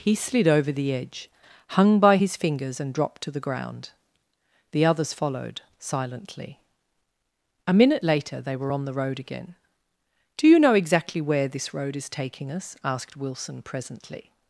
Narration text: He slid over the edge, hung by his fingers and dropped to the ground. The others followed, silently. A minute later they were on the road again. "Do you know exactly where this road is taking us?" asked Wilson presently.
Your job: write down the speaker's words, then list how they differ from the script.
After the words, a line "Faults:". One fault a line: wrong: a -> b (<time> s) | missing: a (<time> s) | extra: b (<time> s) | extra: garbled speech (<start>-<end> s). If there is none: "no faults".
He slid over the edge, hung by his fingers and dropped to the ground. The others followed, silently. A minute later they were on the road again. "Do you know exactly where this road is taking us?" asked Wilson presently.
Faults:
no faults